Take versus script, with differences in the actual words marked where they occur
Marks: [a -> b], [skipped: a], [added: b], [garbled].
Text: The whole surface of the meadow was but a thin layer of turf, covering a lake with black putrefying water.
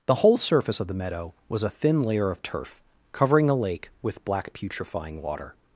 The whole surface of the meadow was [skipped: but] a thin layer of turf, covering a lake with black putrefying water.